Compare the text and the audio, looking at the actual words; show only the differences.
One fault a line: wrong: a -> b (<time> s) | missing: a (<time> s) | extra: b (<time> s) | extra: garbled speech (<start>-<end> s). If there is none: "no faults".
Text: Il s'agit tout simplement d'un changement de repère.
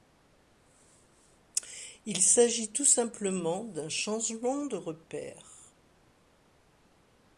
no faults